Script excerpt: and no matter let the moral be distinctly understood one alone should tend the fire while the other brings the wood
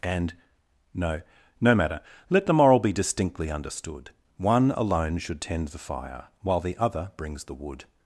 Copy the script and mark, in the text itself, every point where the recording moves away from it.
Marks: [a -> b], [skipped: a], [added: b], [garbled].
and no [added: no] matter let the moral be distinctly understood one alone should tend the fire while the other brings the wood